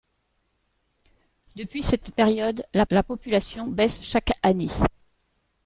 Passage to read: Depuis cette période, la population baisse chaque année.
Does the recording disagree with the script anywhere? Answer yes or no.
yes